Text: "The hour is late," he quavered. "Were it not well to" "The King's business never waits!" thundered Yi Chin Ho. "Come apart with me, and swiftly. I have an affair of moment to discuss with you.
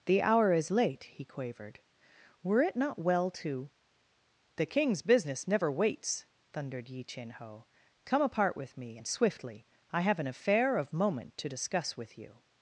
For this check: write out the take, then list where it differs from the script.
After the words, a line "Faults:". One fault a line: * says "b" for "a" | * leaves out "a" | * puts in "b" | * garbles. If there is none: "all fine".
"The hour is late," he quavered. "Were it not well to" "The King's business never waits!" thundered Yi Chin Ho. "Come apart with me, and swiftly. I have an affair of moment to discuss with you.
Faults:
all fine